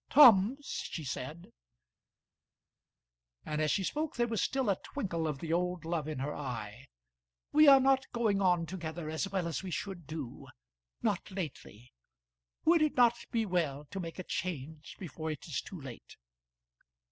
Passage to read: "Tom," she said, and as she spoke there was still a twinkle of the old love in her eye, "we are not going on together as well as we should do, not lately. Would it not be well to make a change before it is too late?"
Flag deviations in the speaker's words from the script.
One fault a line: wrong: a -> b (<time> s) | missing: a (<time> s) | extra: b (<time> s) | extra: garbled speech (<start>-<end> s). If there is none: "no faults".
no faults